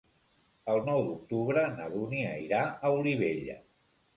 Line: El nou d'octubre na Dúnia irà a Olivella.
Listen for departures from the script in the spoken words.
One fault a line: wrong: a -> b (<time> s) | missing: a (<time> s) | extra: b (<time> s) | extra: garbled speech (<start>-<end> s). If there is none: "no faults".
no faults